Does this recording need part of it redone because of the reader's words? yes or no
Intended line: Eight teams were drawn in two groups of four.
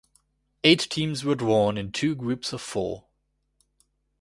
no